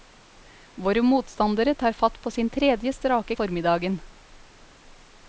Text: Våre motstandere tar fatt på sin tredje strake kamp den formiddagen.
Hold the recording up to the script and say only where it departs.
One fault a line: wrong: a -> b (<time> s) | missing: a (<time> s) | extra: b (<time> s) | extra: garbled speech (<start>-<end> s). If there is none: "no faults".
missing: kamp den (3.3 s)